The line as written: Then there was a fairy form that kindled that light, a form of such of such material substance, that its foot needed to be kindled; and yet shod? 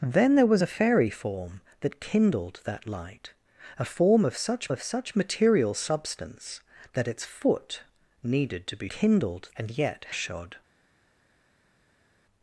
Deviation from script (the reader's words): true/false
false